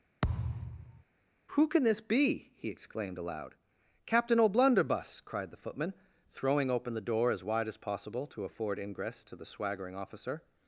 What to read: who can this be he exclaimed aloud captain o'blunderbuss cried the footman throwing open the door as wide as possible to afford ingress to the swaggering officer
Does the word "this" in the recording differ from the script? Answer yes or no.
no